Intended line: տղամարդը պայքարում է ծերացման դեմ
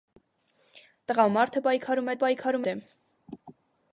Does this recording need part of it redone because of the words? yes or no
yes